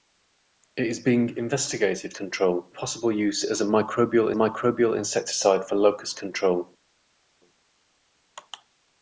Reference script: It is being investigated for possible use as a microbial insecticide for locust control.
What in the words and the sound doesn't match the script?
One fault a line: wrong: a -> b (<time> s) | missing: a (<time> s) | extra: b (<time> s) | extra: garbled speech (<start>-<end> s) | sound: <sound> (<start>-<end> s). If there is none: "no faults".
wrong: for -> control (2.2 s)
extra: microbial (4.3 s)